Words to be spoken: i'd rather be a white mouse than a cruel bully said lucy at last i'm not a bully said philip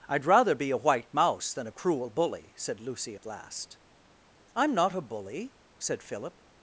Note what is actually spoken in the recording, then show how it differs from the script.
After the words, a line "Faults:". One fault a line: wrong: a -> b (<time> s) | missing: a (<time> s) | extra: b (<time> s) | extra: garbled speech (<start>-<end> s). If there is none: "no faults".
i'd rather be a white mouse than a cruel bully said lucy at last i'm not a bully said philip
Faults:
no faults